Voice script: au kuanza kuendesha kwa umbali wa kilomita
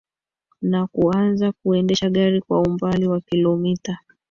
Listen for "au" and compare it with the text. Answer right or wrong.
wrong